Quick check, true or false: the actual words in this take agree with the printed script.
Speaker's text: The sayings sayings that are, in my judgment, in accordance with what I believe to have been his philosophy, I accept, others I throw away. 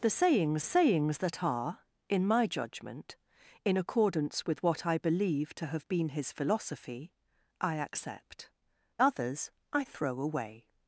true